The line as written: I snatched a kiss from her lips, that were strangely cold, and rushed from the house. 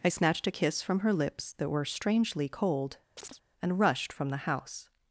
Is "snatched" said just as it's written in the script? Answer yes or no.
yes